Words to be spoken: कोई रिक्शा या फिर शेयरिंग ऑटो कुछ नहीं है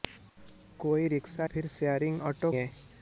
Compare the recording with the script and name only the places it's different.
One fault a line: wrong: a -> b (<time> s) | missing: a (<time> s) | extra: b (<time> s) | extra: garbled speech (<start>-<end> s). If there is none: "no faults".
missing: या (1.5 s)
missing: कुछ नहीं (2.5 s)